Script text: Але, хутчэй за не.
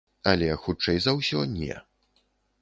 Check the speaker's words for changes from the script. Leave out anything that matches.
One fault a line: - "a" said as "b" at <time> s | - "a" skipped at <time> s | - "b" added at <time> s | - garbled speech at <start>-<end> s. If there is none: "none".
- "ўсё" added at 1.2 s